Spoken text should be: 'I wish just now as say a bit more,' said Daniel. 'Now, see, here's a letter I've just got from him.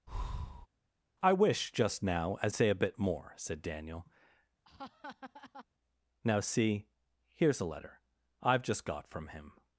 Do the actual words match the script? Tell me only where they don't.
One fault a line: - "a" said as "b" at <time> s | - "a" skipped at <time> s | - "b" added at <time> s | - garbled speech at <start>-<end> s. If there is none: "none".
none